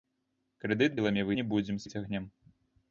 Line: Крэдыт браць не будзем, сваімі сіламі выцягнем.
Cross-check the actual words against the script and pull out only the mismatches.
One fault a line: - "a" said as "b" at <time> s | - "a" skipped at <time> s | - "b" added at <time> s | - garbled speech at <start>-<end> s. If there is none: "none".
- "браць" said as "сіламі" at 0.9 s
- "сваімі сіламі" skipped at 1.8 s